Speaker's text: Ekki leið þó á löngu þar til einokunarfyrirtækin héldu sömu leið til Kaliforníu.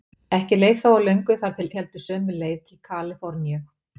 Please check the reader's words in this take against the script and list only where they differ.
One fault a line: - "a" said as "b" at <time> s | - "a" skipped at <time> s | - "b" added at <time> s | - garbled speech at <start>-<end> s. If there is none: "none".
- "einokunarfyrirtækin" skipped at 1.7 s